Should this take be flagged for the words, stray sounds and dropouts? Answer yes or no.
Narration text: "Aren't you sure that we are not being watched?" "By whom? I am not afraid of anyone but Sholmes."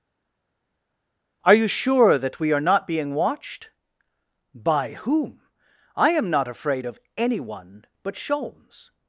yes